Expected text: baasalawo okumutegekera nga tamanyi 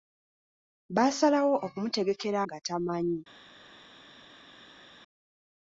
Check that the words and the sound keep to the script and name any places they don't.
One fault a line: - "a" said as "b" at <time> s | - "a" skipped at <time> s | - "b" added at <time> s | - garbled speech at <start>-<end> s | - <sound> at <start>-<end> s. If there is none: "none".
none